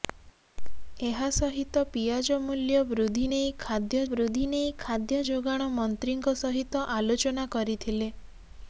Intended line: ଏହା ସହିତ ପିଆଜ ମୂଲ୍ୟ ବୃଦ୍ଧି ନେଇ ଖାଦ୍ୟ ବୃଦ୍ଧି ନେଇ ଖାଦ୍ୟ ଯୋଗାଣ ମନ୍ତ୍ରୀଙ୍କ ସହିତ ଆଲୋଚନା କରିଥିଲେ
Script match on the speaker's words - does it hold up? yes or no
yes